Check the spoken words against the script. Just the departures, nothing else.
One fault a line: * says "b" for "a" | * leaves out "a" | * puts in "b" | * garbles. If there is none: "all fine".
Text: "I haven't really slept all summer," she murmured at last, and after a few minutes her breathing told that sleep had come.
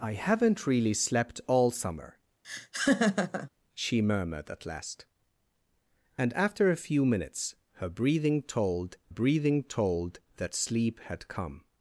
* puts in "breathing told"